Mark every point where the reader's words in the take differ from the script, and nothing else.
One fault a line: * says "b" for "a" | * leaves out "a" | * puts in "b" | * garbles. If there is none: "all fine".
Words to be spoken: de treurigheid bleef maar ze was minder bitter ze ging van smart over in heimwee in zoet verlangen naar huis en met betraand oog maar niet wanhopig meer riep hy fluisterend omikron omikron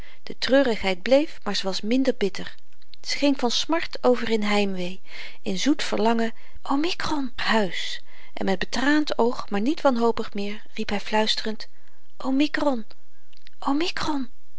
* says "omikron" for "naar"